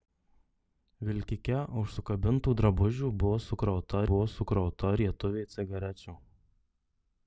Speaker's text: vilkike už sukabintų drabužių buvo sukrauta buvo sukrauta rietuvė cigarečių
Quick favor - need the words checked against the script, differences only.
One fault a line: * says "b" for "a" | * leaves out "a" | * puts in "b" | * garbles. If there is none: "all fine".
all fine